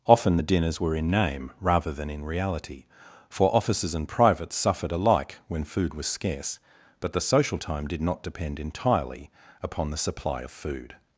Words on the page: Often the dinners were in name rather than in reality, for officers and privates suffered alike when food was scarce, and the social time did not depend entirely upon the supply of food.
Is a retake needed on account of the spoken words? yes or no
yes